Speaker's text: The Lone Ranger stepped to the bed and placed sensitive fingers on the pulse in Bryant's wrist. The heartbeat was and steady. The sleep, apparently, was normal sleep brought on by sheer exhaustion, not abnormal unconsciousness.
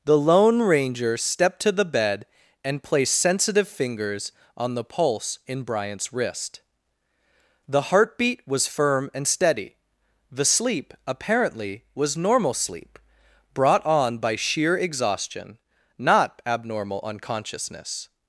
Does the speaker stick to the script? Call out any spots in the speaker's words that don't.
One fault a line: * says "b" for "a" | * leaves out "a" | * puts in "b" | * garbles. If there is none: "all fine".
* puts in "firm"